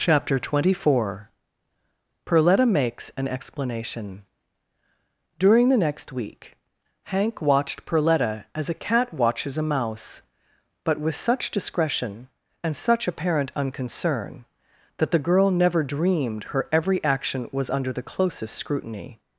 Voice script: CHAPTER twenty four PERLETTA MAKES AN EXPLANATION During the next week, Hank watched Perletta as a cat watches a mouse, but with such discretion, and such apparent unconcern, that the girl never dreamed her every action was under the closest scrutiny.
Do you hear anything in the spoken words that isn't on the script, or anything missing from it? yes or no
no